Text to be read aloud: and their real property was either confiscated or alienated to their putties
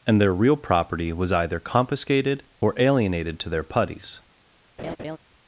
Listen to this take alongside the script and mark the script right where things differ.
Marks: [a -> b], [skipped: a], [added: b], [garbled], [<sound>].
and their real property was either confiscated or alienated to their putties [laugh]